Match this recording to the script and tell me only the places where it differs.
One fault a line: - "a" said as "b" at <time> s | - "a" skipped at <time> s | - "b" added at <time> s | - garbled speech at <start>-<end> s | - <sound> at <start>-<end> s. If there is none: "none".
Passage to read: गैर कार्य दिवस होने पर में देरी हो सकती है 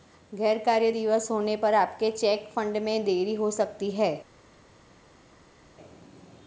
- "आपके चेक फंड" added at 1.7 s